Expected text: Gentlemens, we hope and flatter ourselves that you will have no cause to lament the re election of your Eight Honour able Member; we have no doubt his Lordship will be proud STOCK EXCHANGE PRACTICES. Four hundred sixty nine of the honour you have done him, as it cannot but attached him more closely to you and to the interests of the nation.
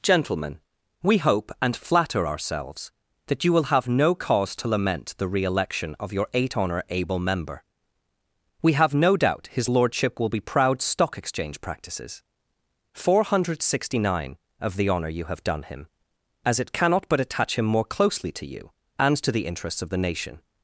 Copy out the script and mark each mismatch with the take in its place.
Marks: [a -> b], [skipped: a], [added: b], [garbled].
[Gentlemens, -> Gentlemen] we hope and flatter ourselves that you will have no cause to lament the re election of your Eight Honour able Member; we have no doubt his Lordship will be proud STOCK EXCHANGE PRACTICES. Four hundred sixty nine of the honour you have done him, as it cannot but [attached -> attach] him more closely to you and to the interests of the nation.